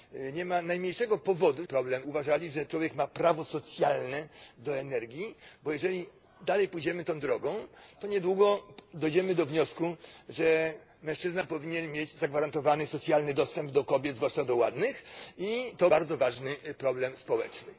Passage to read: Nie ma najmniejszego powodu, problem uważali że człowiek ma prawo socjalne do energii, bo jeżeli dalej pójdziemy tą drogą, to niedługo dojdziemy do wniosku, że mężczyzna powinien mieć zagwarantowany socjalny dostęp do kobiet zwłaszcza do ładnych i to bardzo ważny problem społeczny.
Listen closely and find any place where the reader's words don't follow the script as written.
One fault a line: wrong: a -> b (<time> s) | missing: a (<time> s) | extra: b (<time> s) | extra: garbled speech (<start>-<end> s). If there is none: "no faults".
no faults